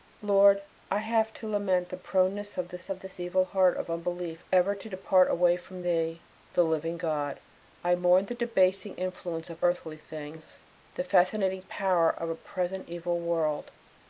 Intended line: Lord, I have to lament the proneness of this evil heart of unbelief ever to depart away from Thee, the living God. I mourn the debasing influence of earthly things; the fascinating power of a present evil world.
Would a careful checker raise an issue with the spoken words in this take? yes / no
yes